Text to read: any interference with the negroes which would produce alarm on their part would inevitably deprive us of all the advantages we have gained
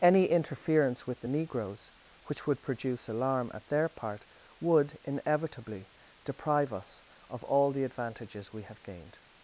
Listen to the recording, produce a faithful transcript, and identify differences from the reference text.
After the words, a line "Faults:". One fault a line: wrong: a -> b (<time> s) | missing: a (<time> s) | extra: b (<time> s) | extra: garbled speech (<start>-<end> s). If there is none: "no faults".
any interference with the negroes which would produce alarm at their part would inevitably deprive us of all the advantages we have gained
Faults:
wrong: on -> at (3.5 s)